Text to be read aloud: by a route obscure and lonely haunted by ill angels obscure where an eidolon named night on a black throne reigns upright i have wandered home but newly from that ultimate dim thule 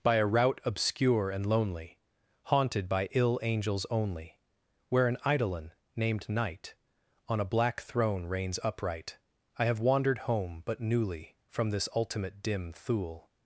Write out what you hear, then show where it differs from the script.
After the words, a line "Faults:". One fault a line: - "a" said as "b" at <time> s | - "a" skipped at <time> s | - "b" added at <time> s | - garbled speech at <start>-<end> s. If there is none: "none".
by a route obscure and lonely haunted by ill angels only where an eidolon named night on a black throne reigns upright i have wandered home but newly from this ultimate dim thule
Faults:
- "obscure" said as "only" at 3.9 s
- "that" said as "this" at 11.7 s